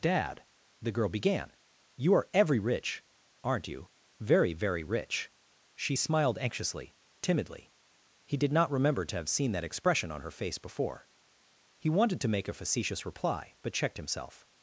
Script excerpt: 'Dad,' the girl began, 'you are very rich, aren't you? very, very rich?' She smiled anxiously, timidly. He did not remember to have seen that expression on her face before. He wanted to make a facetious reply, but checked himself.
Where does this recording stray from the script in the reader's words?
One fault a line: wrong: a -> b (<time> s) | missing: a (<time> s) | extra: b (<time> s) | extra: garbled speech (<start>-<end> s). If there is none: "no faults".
wrong: very -> every (2.3 s)